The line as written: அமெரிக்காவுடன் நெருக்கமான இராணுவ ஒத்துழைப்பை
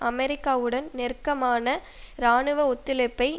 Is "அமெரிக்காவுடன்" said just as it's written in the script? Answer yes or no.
yes